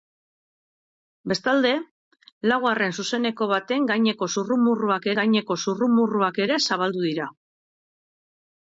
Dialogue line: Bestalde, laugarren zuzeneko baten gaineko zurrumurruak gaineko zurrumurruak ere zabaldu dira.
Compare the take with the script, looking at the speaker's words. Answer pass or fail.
pass